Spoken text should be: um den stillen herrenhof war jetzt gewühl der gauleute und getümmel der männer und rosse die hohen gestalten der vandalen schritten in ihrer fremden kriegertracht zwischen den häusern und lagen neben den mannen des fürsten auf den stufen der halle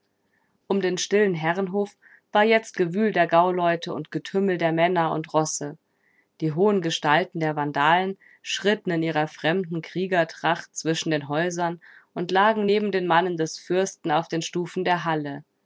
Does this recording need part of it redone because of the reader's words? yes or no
no